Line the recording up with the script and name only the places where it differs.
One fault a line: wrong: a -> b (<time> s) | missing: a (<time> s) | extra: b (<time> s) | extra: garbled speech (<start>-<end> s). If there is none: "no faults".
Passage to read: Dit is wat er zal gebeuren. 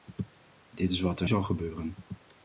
no faults